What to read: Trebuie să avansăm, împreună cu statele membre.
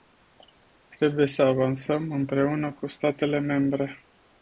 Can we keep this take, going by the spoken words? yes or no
yes